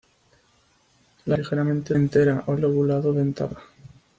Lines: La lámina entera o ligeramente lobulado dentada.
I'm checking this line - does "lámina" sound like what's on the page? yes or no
no